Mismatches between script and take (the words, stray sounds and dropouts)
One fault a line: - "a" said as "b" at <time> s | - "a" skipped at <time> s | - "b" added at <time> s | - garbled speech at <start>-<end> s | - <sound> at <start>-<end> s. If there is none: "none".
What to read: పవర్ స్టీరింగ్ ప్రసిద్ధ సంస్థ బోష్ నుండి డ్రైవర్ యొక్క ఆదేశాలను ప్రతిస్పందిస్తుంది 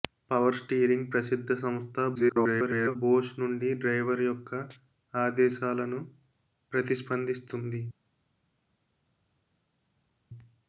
- garbled speech at 2.1-3.0 s